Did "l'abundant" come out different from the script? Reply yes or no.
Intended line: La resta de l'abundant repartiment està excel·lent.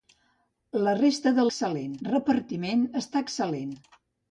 yes